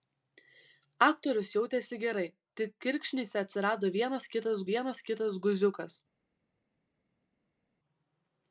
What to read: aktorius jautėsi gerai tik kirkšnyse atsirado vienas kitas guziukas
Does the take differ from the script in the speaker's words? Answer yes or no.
yes